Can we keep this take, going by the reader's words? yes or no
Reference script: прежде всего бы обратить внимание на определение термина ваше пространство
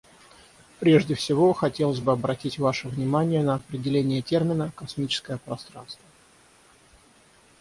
no